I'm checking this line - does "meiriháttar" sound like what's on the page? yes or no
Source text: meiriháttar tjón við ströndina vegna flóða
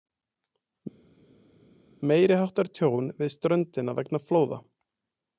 yes